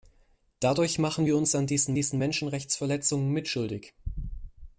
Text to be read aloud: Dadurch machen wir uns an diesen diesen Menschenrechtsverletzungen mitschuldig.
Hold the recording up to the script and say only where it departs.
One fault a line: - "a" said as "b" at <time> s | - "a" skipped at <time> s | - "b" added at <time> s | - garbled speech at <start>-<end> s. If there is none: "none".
none